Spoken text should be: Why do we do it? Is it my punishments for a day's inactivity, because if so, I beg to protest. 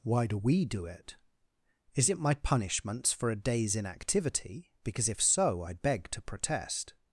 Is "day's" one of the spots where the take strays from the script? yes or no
no